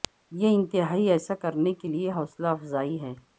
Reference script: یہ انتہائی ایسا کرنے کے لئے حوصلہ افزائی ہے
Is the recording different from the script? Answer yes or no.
no